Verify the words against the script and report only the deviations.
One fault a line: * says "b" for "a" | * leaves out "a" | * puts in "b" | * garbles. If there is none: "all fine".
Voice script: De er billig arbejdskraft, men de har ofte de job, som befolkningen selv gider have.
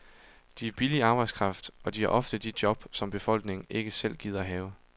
* says "og" for "men"
* puts in "ikke"